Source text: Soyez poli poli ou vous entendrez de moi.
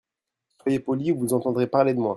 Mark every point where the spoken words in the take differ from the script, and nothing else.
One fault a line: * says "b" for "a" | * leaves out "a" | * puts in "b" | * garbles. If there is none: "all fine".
* leaves out "poli"
* puts in "parler"